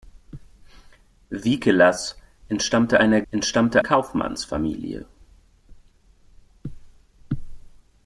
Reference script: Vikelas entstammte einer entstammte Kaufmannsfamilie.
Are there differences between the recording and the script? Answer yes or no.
no